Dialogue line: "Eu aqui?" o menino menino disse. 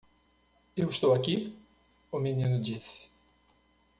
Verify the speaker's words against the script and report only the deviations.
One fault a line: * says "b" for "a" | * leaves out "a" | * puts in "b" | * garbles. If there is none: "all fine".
* puts in "estou"
* leaves out "menino"